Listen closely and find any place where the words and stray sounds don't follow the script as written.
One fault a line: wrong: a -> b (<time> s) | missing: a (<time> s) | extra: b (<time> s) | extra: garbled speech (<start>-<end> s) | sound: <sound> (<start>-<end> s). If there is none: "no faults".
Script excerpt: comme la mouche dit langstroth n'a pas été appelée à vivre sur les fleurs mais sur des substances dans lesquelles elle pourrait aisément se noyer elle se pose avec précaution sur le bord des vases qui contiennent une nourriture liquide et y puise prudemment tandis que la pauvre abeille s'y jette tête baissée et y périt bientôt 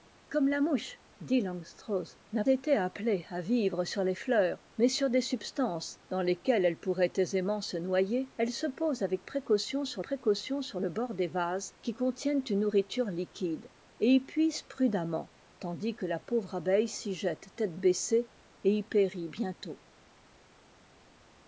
missing: pas (2.4 s)
extra: précaution sur (10.0 s)